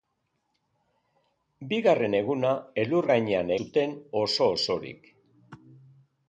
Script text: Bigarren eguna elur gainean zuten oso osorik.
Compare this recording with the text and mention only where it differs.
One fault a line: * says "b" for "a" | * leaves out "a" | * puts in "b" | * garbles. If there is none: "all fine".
all fine